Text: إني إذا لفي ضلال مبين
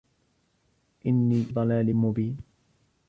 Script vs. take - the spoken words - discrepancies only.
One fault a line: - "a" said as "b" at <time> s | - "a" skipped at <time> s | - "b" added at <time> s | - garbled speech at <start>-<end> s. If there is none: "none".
- "إذا لفي" skipped at 1.4 s